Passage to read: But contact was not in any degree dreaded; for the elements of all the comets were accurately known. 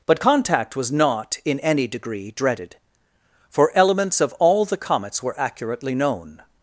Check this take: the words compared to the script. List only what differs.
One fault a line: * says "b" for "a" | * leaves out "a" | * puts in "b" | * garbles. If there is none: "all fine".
* leaves out "the"